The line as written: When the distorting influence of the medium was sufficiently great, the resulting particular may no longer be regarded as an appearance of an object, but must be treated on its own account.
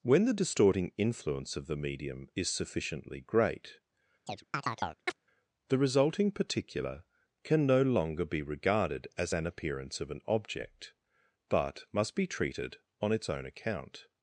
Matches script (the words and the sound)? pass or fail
fail